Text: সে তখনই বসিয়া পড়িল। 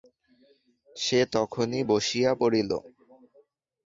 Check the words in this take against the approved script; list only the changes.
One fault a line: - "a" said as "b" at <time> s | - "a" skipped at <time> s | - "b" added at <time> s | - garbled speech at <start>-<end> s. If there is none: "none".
none